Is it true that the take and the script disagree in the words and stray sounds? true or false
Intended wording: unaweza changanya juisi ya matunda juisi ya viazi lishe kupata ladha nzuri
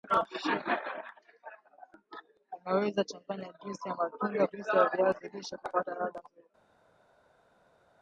false